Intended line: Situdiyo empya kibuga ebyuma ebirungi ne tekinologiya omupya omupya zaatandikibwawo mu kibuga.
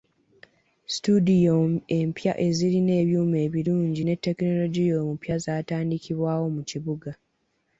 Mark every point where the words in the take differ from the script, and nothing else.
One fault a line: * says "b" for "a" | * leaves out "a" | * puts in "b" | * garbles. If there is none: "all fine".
* says "ezirina" for "kibuga"
* leaves out "omupya"